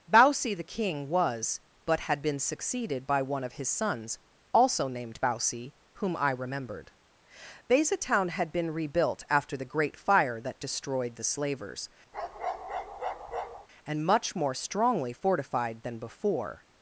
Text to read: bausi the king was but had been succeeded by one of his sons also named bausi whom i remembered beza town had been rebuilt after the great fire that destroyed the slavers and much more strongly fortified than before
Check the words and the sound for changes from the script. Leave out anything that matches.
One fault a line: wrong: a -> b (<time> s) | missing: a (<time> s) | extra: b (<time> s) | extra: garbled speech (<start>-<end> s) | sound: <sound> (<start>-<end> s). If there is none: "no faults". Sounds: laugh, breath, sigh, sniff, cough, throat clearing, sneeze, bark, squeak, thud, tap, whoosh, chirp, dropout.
sound: bark (12.1-13.7 s)